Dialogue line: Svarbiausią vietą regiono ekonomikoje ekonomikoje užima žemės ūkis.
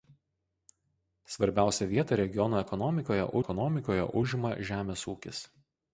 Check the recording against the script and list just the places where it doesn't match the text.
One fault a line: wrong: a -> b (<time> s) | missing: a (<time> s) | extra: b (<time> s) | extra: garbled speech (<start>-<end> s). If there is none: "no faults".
no faults